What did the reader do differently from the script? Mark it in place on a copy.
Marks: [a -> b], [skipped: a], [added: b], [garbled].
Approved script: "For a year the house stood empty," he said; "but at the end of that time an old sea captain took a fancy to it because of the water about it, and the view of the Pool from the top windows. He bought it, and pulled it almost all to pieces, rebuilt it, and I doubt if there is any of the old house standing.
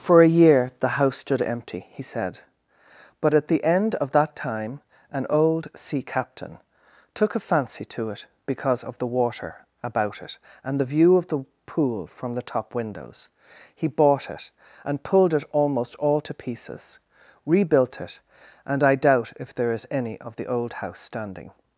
"For a year the house stood empty," he said; "but at the end of that time an old sea captain took a fancy to it because of the water about it, and the view of the Pool from the top windows. He bought it, and pulled it almost all to pieces, rebuilt it, and I doubt if there is any of the old house standing.